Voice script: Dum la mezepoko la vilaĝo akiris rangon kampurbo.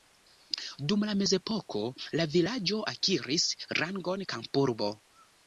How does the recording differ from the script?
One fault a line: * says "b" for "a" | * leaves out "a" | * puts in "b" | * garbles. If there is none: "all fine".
all fine